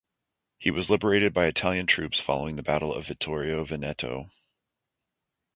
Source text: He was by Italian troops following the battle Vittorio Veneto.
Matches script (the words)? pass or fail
fail